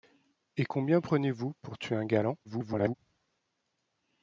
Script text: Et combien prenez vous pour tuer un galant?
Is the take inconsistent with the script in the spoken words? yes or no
yes